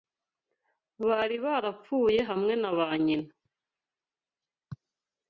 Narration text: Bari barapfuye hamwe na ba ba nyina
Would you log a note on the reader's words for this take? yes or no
yes